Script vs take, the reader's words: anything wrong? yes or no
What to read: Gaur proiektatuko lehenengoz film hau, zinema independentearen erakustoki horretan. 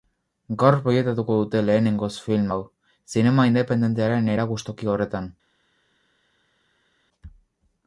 yes